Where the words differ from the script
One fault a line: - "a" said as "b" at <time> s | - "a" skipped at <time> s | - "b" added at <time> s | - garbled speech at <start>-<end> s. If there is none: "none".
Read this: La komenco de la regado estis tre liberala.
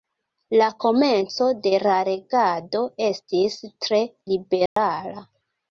none